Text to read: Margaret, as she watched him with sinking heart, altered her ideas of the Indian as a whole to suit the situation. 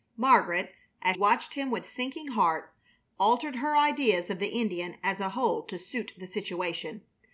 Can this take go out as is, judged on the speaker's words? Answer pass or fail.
fail